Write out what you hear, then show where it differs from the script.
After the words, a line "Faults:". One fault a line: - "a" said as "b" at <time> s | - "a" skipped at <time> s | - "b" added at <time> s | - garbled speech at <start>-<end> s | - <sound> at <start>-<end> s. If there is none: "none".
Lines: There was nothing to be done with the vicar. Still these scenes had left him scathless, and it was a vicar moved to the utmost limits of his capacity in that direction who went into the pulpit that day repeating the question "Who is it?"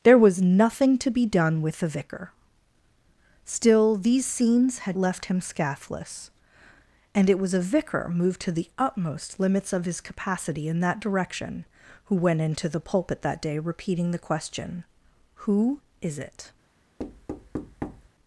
There was nothing to be done with the vicar. Still these scenes had left him scathless, and it was a vicar moved to the utmost limits of his capacity in that direction who went into the pulpit that day repeating the question "Who is it?"
Faults:
- thud at 17.0-18.1 s